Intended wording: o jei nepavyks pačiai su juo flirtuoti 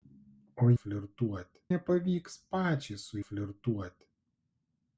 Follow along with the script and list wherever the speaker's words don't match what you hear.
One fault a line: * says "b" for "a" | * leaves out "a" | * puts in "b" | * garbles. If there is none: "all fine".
* says "flirtuoti" for "jei"
* leaves out "juo"